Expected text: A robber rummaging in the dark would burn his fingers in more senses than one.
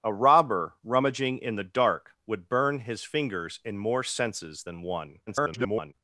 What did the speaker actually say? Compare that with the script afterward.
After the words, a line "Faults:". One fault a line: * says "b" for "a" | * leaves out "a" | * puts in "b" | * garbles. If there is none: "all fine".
A robber rummaging in the dark would burn his fingers in more senses than one. [garbled]
Faults:
* garbles